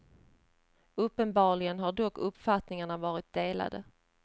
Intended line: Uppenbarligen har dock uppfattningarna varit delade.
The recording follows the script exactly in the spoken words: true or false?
true